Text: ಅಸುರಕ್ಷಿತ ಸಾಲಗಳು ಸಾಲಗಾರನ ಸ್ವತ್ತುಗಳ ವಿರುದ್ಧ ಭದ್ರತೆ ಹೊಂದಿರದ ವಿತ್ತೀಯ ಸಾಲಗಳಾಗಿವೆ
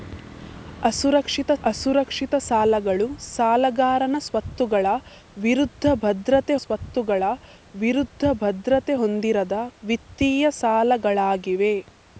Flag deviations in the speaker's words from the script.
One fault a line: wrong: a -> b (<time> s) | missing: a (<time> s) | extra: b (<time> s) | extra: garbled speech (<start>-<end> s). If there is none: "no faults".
extra: ಅಸುರಕ್ಷಿತ (1.6 s)
extra: ಸ್ವತ್ತುಗಳ ವಿರುದ್ಧ ಭದ್ರತೆ (6.6 s)